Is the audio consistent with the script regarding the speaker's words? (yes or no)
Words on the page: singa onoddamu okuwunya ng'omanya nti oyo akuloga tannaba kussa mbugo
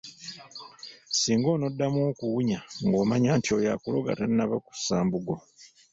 yes